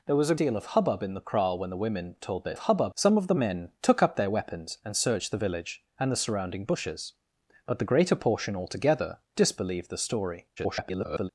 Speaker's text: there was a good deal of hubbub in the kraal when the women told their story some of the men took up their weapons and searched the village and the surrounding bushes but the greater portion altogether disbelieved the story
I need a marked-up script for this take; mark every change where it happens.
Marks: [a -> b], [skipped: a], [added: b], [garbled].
there was a [skipped: good] deal of hubbub in the kraal when the women told their [story -> hubbub] some of the men took up their weapons and searched the village and the surrounding bushes but the greater portion altogether disbelieved the story [garbled]